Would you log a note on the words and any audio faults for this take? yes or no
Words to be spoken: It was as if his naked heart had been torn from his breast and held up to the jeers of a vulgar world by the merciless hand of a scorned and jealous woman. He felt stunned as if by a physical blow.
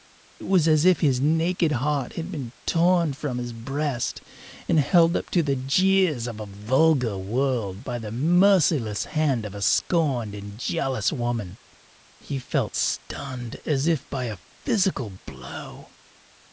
no